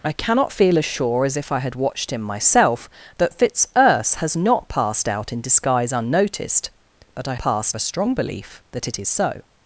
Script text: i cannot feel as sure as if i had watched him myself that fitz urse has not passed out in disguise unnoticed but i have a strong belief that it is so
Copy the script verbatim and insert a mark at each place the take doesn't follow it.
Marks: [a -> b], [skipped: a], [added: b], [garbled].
i cannot feel as sure as if i had watched him myself that fitz urse has not passed out in disguise unnoticed but i [have -> passed] a strong belief that it is so